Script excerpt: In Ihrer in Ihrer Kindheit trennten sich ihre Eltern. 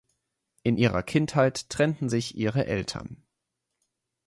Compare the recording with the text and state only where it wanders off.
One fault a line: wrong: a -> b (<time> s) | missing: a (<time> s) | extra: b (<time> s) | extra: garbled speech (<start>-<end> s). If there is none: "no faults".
missing: in Ihrer (1.0 s)